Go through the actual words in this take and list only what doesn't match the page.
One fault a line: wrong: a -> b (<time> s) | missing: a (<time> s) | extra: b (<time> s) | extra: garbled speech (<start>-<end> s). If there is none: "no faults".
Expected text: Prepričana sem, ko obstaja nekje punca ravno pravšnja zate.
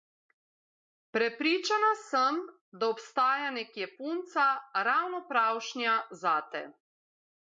wrong: ko -> da (2.7 s)